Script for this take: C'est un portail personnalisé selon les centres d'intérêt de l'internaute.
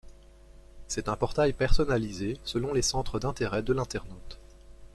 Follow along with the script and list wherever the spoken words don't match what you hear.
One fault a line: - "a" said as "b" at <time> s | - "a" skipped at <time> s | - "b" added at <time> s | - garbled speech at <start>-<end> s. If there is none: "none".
none